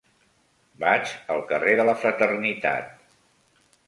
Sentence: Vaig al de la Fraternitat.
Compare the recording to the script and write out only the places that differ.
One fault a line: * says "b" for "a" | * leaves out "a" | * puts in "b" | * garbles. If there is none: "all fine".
* puts in "carrer"